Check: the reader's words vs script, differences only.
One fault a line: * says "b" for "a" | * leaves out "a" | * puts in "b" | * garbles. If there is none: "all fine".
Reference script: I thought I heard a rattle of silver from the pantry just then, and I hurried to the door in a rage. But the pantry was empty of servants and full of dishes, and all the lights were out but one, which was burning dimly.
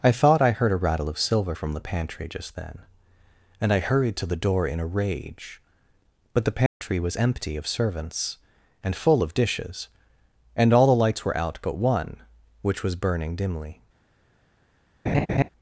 all fine